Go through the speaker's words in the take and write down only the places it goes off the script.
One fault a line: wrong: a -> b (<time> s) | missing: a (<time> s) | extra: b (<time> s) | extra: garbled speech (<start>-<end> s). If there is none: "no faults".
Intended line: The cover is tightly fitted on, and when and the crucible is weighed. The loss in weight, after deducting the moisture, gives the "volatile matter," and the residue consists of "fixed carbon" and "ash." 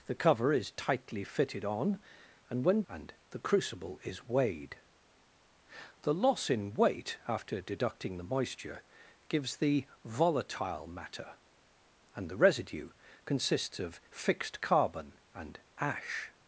no faults